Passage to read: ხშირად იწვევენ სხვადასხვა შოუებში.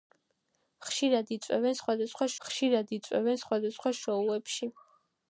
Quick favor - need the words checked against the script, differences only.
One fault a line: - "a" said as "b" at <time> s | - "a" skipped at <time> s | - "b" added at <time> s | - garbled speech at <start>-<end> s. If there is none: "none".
- "ხშირად იწვევენ სხვადასხვა" added at 2.5 s